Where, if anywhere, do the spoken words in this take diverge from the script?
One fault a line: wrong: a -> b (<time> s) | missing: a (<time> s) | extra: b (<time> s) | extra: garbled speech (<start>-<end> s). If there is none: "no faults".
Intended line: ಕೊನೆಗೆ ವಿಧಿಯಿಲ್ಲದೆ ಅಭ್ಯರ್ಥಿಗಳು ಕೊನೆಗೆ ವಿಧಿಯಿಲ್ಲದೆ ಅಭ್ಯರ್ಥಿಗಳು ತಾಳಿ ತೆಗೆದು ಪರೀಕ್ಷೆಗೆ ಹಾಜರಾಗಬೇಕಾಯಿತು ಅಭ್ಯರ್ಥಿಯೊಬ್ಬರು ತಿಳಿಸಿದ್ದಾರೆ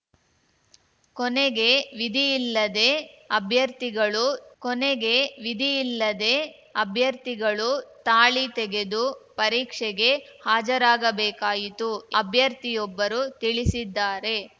no faults